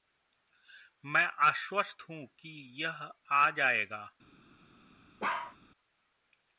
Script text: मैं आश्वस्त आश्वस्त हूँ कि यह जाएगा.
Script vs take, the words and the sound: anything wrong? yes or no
yes